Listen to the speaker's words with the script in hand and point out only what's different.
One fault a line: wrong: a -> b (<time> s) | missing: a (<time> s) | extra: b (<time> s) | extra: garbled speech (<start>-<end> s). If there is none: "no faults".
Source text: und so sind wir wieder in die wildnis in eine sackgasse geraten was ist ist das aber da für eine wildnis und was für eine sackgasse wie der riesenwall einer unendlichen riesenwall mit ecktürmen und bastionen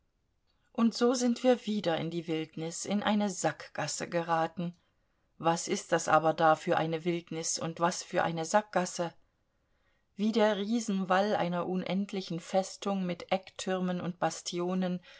missing: ist (5.9 s)
wrong: riesenwall -> festung (12.4 s)